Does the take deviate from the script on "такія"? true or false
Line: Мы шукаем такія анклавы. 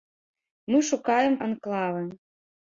true